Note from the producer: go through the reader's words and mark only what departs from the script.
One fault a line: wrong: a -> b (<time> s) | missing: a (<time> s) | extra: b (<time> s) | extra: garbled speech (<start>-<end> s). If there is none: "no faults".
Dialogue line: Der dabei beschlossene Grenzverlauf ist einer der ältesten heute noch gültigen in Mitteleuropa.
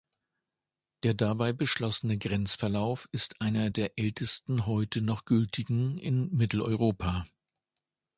no faults